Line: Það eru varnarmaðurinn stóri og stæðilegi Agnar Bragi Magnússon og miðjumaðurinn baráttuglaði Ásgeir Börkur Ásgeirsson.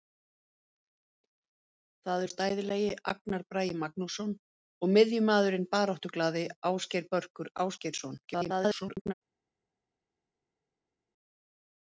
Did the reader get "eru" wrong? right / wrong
wrong